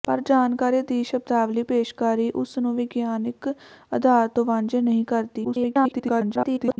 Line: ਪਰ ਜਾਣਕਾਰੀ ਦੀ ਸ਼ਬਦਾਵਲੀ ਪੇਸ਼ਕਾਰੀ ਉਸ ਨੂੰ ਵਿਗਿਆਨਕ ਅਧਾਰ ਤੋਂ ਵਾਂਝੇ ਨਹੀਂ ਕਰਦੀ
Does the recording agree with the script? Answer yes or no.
no